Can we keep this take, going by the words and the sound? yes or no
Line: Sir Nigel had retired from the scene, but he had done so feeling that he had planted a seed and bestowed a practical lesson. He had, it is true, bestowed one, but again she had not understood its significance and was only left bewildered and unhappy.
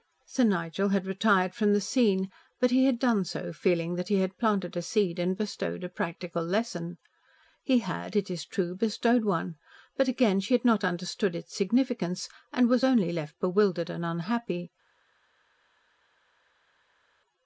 yes